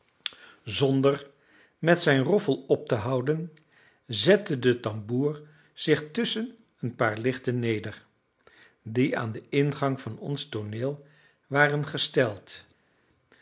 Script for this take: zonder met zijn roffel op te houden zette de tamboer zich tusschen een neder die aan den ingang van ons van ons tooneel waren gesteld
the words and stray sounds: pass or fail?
fail